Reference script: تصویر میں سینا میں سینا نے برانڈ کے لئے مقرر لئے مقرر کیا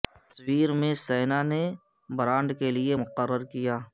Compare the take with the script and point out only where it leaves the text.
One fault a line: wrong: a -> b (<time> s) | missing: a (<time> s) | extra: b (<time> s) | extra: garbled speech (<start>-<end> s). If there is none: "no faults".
missing: میں سینا (1.4 s)
missing: لئے مقرر (3.4 s)